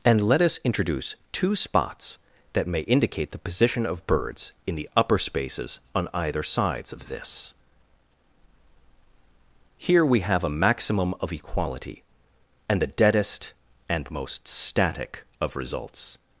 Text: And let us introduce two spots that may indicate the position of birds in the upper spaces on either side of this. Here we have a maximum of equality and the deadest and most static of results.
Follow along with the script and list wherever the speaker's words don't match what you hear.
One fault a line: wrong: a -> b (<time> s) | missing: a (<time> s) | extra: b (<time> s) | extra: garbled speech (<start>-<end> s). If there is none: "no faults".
wrong: side -> sides (6.4 s)